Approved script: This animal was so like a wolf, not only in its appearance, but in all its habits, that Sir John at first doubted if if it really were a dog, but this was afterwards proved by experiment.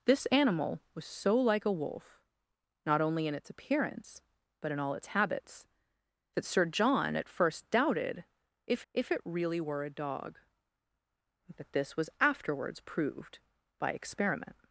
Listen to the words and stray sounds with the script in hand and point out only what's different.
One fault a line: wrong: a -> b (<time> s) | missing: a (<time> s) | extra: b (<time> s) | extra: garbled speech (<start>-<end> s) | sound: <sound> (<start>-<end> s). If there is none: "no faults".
no faults